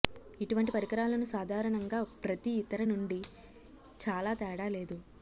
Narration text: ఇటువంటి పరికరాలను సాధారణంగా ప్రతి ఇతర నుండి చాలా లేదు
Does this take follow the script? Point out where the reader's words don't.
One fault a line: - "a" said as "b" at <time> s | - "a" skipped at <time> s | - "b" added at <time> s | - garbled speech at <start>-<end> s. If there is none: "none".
- "తేడా" added at 4.3 s